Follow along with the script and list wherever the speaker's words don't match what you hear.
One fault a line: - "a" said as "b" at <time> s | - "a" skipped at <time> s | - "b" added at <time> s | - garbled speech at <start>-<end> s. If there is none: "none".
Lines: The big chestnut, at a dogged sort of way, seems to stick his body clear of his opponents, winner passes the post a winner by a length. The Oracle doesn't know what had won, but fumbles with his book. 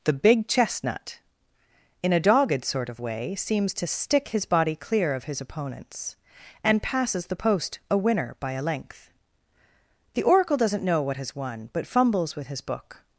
- "at" said as "in" at 2.0 s
- "winner" said as "and" at 6.6 s
- "had" said as "has" at 11.2 s